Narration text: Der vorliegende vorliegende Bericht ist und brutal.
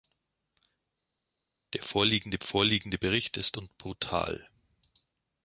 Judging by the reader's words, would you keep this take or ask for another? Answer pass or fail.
pass